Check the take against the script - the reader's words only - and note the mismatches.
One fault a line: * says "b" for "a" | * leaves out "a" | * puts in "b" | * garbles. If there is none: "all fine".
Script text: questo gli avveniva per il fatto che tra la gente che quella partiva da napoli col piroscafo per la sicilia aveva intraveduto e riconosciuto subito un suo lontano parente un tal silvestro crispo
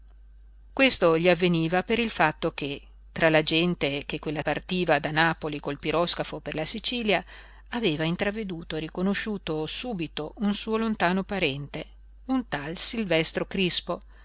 all fine